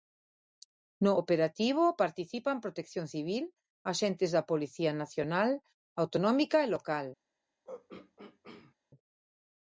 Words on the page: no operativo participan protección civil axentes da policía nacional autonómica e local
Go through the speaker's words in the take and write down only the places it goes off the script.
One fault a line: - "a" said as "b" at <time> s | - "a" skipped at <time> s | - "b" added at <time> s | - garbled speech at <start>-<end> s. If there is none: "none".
none